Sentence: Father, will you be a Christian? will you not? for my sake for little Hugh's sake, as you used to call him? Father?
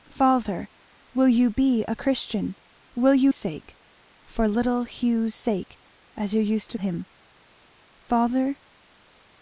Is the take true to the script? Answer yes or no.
no